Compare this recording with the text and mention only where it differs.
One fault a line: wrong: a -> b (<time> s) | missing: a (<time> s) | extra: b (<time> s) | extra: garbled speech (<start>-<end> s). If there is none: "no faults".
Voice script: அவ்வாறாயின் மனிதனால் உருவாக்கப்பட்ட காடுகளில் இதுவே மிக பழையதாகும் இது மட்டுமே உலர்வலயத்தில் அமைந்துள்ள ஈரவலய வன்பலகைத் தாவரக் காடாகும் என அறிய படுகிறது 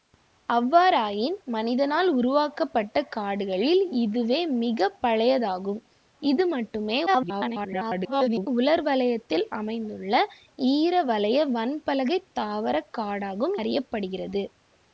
extra: garbled speech (7.1-8.5 s)
missing: என (13.6 s)